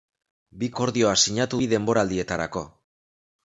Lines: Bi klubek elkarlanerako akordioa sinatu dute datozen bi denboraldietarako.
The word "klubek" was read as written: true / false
false